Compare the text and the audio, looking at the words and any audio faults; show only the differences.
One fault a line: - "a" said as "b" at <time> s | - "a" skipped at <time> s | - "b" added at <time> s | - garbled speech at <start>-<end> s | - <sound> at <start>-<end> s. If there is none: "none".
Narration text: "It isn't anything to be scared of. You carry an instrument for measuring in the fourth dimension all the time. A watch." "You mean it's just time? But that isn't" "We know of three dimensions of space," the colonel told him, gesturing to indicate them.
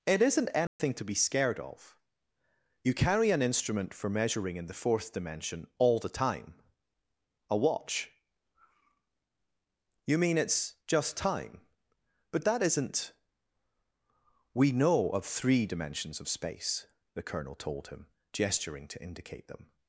- dropout at 0.7-0.8 s